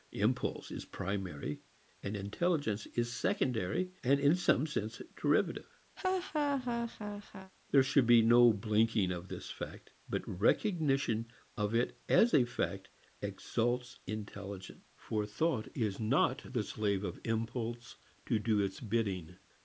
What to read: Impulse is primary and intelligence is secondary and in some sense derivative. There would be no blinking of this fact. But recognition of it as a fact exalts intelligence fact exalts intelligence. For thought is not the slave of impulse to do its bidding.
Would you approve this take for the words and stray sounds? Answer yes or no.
no